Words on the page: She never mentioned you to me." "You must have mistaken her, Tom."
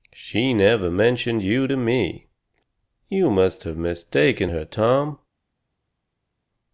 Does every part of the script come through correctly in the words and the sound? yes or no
yes